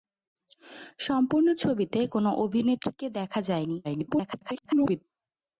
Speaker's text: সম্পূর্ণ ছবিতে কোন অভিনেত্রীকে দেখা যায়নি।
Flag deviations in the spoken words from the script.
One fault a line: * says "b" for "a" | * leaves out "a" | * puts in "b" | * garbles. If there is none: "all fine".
* garbles